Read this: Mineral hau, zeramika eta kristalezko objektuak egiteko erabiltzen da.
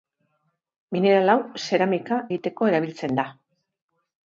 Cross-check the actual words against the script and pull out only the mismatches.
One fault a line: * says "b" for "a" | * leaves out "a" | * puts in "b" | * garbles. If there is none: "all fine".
* leaves out "eta kristalezko objektuak"